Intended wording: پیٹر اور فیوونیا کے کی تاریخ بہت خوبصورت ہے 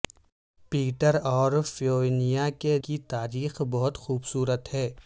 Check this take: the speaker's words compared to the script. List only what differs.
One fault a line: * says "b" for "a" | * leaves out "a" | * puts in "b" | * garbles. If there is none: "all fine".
all fine